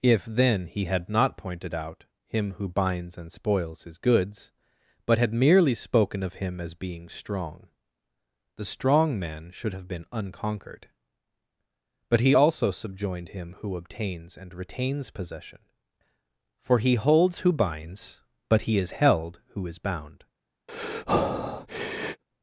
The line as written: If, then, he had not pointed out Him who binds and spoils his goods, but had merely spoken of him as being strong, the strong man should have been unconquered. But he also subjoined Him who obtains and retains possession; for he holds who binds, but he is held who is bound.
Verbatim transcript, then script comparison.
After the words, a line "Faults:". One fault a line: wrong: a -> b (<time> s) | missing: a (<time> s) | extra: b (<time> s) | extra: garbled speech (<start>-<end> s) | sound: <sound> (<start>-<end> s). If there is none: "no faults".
If, then, he had not pointed out Him who binds and spoils his goods, but had merely spoken of him as being strong, the strong man should have been unconquered. But he also subjoined Him who obtains and retains possession; for he holds who binds, but he is held who is bound.
Faults:
sound: breath (20.7-22.2 s)